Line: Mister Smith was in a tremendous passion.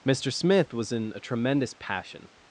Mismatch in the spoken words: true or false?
false